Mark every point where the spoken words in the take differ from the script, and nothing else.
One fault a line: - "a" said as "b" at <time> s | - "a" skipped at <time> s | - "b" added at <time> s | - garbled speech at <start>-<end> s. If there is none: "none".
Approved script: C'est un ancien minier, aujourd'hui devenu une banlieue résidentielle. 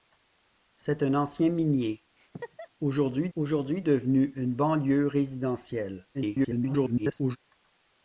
- "aujourd'hui" added at 3.3 s
- garbled speech at 6.1-7.4 s